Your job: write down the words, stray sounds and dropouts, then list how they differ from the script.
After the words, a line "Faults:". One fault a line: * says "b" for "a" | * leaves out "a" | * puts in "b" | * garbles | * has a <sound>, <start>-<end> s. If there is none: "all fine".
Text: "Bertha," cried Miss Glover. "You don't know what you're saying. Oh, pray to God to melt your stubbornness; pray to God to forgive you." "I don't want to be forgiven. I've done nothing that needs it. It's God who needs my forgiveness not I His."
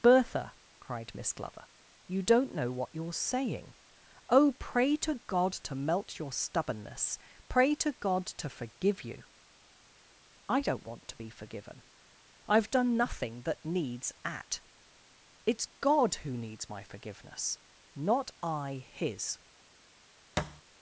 "Bertha," cried Miss Glover. "You don't know what you're saying. Oh, pray to God to melt your stubbornness; pray to God to forgive you." "I don't want to be forgiven. I've done nothing that needs at. It's God who needs my forgiveness not I His."
Faults:
* says "at" for "it"
* has a thud, 20.4-20.6 s